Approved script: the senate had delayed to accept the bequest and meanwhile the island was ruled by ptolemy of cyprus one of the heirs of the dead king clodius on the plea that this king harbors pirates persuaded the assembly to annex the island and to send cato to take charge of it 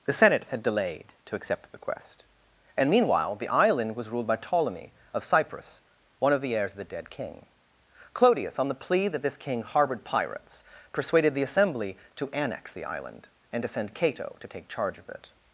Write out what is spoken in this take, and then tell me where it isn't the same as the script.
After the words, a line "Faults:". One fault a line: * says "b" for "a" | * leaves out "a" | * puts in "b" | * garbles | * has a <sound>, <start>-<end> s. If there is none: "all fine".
the senate had delayed to accept the bequest and meanwhile the island was ruled by ptolemy of cyprus one of the heirs of the dead king clodius on the plea that this king harbored pirates persuaded the assembly to annex the island and to send cato to take charge of it
Faults:
* says "harbored" for "harbors"